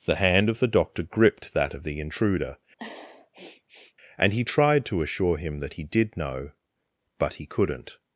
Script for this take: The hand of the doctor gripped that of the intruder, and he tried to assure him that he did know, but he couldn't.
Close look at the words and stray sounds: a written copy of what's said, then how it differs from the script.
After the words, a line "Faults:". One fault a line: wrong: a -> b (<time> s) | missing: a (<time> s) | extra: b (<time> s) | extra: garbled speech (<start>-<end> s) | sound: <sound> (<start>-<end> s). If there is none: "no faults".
The hand of the doctor gripped that of the intruder, and he tried to assure him that he did know, but he couldn't.
Faults:
sound: sniff (2.8-3.9 s)